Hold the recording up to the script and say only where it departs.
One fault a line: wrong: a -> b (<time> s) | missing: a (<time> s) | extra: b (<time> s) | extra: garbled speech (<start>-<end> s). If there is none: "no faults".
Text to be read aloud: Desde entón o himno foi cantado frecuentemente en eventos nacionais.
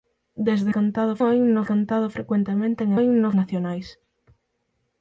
wrong: entón -> cantado (0.8 s)
missing: foi (1.6 s)
wrong: eventos -> himno (3.0 s)